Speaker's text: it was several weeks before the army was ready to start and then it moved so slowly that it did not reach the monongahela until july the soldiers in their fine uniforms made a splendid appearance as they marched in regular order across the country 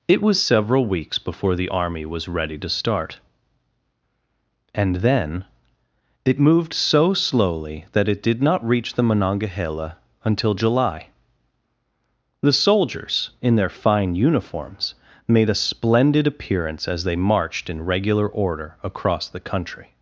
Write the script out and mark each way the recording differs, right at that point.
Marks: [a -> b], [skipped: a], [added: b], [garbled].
it was several weeks before the army was ready to start and then it moved so slowly that it did not reach the monongahela until july the soldiers in their fine uniforms made a splendid appearance as they marched in regular order across the country